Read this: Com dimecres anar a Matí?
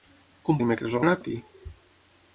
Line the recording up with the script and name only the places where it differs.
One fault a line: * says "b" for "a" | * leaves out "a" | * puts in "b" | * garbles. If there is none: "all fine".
all fine